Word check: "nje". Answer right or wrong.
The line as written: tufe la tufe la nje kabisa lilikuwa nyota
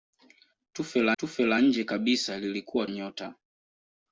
right